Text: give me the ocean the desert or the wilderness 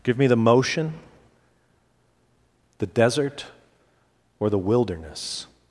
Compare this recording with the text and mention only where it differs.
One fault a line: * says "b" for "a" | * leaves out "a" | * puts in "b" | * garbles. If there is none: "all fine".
* says "motion" for "ocean"